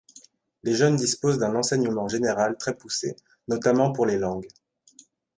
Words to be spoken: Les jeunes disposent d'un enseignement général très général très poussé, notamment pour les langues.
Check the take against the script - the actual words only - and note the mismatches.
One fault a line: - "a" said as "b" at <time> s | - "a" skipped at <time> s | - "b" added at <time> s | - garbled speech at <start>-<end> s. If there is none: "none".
- "général très" skipped at 2.7 s